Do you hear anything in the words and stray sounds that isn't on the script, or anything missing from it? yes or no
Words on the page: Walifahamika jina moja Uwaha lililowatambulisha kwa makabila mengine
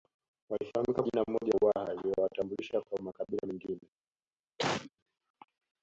yes